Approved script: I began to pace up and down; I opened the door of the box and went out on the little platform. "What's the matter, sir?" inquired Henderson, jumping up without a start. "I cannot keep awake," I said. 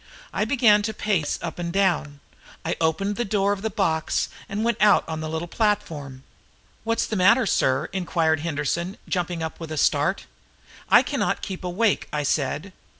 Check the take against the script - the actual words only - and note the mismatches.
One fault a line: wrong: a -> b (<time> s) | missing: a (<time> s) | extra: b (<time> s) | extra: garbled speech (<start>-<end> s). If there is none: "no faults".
wrong: without -> with (9.6 s)